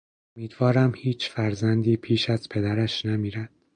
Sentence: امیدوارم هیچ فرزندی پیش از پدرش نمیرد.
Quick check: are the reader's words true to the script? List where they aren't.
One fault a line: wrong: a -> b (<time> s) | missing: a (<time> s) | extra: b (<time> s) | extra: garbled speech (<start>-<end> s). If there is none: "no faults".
no faults